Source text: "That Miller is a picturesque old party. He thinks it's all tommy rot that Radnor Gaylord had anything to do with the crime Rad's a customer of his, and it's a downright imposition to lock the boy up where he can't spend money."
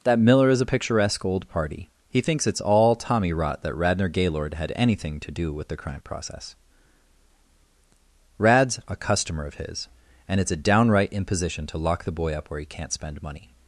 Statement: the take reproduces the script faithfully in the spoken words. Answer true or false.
false